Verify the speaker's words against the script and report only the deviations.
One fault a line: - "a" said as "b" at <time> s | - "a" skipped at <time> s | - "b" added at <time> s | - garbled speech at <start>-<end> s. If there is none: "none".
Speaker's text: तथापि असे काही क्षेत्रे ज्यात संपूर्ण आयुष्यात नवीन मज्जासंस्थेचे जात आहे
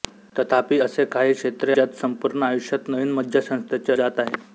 none